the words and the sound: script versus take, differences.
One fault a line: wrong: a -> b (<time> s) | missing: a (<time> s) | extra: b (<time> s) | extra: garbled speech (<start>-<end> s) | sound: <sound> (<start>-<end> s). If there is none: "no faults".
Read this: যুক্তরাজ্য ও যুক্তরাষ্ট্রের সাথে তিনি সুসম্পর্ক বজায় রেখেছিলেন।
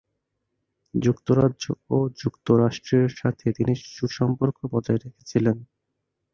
no faults